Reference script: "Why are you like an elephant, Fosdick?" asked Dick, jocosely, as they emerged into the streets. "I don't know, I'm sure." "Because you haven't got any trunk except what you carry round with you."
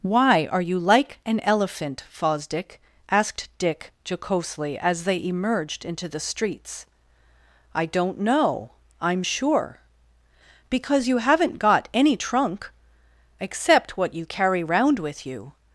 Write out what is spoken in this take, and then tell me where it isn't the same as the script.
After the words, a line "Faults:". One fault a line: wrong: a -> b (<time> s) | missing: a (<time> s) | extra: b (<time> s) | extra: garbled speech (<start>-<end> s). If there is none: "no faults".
"Why are you like an elephant, Fosdick?" asked Dick, jocosely, as they emerged into the streets. "I don't know, I'm sure." "Because you haven't got any trunk except what you carry round with you."
Faults:
no faults